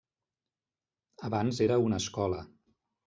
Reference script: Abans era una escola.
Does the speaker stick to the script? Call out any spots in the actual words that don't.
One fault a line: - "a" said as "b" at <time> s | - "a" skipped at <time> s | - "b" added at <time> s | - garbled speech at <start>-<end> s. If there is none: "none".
none